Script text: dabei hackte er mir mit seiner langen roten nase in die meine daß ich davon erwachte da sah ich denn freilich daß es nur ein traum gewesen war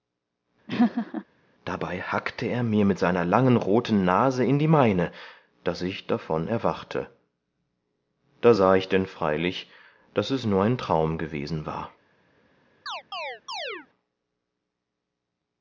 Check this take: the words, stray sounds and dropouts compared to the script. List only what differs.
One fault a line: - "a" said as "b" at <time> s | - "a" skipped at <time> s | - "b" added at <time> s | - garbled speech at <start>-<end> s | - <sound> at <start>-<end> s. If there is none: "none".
- laugh at 0.7-1.2 s
- chirp at 12.9-13.9 s